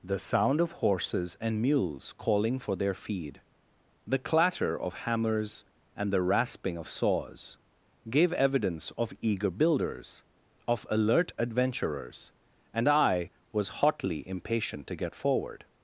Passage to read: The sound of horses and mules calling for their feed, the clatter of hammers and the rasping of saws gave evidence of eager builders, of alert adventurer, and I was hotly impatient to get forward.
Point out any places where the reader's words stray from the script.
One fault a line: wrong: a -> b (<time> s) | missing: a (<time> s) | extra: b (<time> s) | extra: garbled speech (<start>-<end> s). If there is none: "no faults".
wrong: adventurer -> adventurers (11.4 s)